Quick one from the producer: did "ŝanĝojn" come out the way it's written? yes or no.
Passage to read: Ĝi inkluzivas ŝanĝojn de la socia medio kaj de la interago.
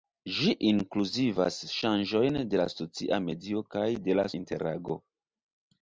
yes